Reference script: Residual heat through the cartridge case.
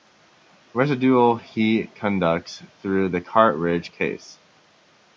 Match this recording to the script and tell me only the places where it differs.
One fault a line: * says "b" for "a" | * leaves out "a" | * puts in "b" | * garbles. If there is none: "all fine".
* puts in "conducts"